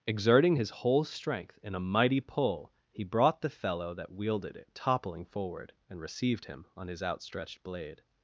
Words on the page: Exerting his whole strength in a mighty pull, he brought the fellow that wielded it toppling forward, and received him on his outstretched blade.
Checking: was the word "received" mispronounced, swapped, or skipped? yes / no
no